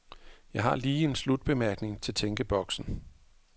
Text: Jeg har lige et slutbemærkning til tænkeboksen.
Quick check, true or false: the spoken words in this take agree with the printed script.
false